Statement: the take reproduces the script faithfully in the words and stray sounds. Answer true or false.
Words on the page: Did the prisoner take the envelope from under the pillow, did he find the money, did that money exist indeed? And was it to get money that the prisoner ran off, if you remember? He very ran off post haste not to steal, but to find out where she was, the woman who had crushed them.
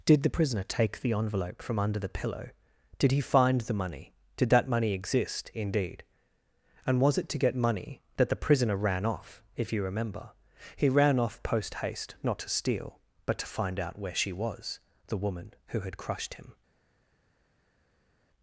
false